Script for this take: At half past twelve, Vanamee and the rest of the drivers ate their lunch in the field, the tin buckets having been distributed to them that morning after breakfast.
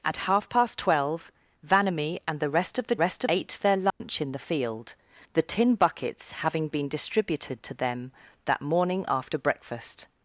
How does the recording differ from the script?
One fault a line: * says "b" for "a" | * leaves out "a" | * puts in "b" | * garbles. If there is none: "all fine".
* says "rest" for "drivers"